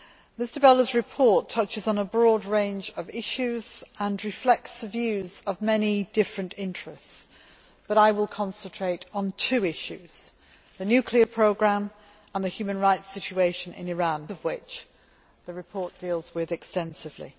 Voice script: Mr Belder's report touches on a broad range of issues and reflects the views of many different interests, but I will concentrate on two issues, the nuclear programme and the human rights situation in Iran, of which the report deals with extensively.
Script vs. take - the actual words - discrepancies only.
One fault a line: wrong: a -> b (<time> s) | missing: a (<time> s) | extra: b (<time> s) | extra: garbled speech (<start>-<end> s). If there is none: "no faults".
no faults